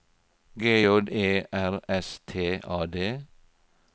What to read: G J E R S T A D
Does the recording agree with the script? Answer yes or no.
yes